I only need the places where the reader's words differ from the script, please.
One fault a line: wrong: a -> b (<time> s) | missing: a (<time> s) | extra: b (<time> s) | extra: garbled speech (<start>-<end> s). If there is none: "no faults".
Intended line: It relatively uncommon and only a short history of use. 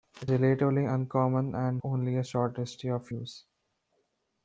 no faults